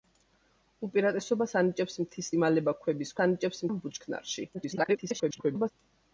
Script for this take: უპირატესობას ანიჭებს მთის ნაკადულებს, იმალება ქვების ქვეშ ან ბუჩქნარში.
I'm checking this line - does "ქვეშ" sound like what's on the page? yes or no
no